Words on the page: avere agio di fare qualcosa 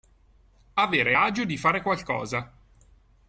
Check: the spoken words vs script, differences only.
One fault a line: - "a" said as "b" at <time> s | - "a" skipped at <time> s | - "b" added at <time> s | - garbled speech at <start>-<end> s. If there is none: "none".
none